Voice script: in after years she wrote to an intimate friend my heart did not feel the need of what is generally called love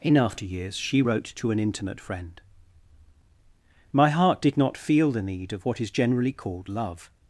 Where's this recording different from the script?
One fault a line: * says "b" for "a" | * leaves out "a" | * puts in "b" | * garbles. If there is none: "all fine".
all fine